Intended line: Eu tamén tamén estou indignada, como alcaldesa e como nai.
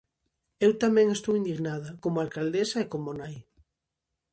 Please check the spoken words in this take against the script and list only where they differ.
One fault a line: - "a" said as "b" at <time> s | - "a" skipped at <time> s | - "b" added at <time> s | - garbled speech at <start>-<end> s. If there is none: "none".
- "tamén" skipped at 1.1 s